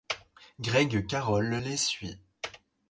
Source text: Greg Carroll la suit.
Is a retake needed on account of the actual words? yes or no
yes